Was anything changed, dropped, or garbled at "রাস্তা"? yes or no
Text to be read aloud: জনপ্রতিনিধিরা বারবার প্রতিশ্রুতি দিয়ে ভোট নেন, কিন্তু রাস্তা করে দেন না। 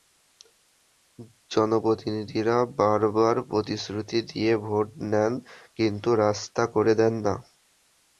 no